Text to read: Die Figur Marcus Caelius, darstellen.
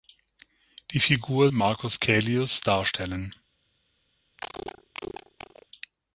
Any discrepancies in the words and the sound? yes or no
yes